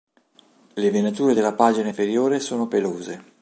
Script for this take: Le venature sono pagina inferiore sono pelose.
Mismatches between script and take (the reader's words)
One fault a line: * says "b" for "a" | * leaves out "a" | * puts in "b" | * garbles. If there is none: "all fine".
* says "della" for "sono"